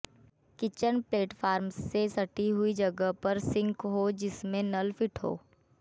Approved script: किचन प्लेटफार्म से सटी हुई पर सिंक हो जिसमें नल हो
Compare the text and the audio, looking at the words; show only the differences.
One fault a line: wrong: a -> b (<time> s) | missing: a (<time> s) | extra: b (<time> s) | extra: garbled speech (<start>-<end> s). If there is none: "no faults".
extra: जगह (2.7 s)
extra: फिट (4.9 s)